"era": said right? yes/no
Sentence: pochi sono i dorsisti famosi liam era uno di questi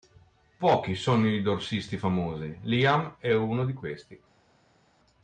no